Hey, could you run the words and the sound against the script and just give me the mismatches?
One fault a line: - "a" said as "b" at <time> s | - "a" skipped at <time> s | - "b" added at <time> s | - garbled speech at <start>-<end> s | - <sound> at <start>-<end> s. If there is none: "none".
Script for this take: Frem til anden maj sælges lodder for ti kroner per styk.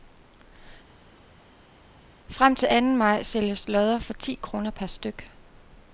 none